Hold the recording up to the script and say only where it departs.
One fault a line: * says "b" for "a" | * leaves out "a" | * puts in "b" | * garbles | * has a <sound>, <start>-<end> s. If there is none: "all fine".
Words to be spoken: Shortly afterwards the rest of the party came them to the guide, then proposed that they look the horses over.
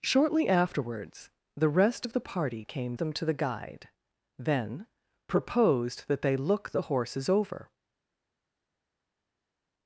all fine